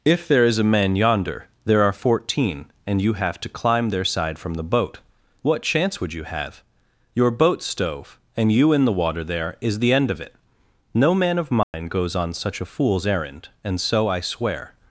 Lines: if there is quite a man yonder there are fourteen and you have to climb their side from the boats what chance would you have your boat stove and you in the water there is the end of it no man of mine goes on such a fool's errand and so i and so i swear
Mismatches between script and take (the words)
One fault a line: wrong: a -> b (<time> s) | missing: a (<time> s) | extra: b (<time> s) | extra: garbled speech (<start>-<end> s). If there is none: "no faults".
missing: quite (0.6 s)
wrong: boats -> boat (4.6 s)
missing: and so i (14.2 s)